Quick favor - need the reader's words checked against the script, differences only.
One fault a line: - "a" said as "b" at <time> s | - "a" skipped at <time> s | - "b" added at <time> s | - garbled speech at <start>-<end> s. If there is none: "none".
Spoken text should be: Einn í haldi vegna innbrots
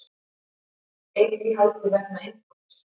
none